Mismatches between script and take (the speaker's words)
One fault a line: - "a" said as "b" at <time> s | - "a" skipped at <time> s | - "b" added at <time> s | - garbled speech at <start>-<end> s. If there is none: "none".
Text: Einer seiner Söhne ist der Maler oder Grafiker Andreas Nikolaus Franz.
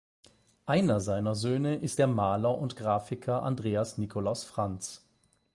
- "oder" said as "und" at 2.6 s